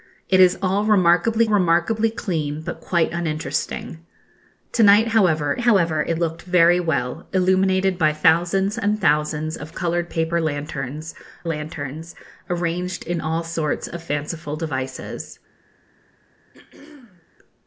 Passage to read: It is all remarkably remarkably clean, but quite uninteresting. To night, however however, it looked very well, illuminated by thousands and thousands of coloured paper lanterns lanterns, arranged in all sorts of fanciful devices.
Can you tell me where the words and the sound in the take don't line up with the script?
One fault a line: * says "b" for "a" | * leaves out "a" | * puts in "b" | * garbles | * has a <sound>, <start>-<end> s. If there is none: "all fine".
* has a throat clearing, 16.5-17.3 s